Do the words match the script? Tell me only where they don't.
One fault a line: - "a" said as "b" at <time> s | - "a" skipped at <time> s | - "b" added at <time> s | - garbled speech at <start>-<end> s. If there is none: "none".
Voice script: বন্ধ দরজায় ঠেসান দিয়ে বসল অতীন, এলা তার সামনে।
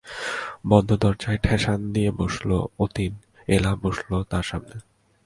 - "বসল" added at 3.8 s